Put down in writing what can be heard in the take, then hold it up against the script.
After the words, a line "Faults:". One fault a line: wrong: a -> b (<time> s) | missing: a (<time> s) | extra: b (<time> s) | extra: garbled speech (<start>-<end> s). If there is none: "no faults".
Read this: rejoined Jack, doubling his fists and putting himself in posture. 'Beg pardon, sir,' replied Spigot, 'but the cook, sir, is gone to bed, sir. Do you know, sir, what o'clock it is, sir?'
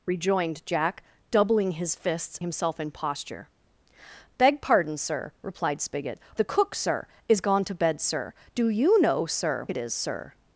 rejoined Jack, doubling his fists himself in posture. 'Beg pardon, sir,' replied Spigot, 'the cook, sir, is gone to bed, sir. Do you know, sir, it is, sir?'
Faults:
missing: and putting (2.4 s)
missing: but (6.2 s)
missing: what o'clock (9.7 s)